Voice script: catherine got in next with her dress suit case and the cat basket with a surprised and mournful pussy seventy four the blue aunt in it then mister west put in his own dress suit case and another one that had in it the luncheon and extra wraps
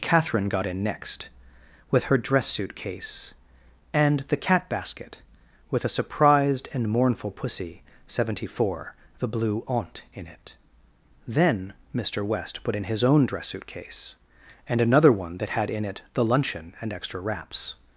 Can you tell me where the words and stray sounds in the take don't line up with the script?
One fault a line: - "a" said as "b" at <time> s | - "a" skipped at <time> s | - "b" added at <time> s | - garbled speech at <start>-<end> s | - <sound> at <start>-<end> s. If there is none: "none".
none